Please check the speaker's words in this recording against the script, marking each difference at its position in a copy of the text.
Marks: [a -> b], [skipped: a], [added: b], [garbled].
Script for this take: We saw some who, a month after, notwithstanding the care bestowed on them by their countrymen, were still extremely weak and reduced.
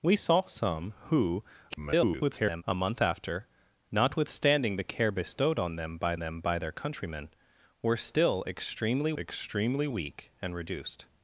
We saw some who, [garbled] a month after, notwithstanding the care bestowed on them by [added: them by] their countrymen, were still extremely [added: extremely] weak and reduced.